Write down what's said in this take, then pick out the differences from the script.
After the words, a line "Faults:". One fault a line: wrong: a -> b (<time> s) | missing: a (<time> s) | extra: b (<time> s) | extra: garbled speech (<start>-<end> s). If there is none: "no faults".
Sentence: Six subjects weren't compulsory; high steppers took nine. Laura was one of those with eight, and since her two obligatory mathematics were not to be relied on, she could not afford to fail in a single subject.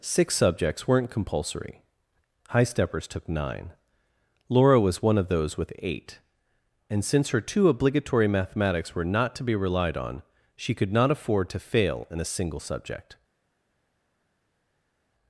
Six subjects weren't compulsory; high steppers took nine. Laura was one of those with eight, and since her two obligatory mathematics were not to be relied on, she could not afford to fail in a single subject.
Faults:
no faults